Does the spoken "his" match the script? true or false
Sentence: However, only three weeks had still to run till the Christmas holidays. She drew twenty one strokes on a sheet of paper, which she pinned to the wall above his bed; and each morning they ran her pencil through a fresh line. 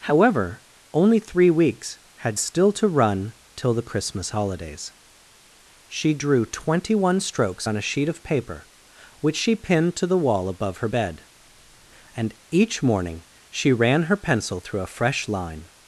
false